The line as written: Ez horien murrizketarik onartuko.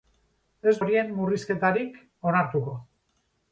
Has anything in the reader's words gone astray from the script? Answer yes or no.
no